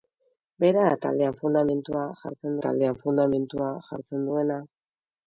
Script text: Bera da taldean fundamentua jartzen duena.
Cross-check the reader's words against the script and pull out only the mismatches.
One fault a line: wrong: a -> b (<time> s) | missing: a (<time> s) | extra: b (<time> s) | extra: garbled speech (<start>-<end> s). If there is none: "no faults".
extra: taldean fundamentua jartzen (2.6 s)